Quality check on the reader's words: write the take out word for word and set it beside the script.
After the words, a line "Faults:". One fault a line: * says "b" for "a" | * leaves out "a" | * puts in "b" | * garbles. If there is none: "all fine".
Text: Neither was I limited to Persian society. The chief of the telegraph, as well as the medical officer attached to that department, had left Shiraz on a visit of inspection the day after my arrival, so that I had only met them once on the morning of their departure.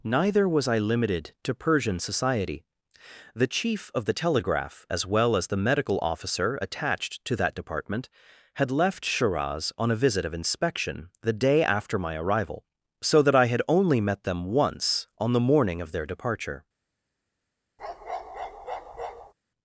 Neither was I limited to Persian society. The chief of the telegraph, as well as the medical officer attached to that department, had left Shiraz on a visit of inspection the day after my arrival, so that I had only met them once on the morning of their departure.
Faults:
all fine